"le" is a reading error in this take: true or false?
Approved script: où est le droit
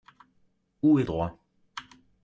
true